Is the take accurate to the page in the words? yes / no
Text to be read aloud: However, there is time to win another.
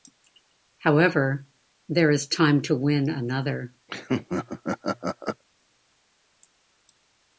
yes